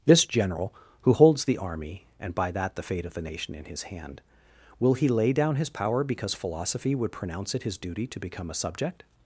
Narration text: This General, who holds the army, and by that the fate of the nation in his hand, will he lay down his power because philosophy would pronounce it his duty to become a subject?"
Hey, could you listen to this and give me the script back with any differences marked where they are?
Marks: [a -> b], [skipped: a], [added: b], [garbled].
This General, who holds the army, and by that the fate of the nation in his hand, will he lay down his power because philosophy would pronounce it his duty to become a subject?"